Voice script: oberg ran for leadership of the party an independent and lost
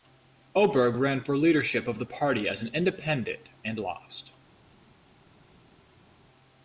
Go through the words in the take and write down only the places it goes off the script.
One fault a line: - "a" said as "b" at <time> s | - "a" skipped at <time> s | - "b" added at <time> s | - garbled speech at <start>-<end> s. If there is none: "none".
- "as" added at 2.5 s